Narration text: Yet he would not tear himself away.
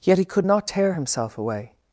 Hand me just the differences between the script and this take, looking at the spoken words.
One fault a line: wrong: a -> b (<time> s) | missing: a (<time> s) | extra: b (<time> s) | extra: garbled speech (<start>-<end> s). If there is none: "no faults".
wrong: would -> could (0.2 s)